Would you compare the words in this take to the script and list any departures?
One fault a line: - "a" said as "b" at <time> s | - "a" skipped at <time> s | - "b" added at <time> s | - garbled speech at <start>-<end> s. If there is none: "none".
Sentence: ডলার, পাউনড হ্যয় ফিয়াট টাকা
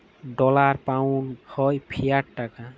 none